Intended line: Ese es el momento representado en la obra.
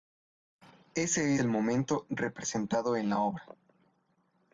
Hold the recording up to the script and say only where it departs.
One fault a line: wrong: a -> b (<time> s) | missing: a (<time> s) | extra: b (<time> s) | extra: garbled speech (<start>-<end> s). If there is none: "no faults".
missing: es (1.4 s)